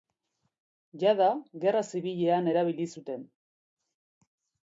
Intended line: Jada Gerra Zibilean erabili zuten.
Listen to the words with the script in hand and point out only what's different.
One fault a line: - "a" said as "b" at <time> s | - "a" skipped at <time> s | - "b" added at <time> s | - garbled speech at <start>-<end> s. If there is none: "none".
none